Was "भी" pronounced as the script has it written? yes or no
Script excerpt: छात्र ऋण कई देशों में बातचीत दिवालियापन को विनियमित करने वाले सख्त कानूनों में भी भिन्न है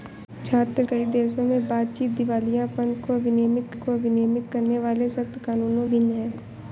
no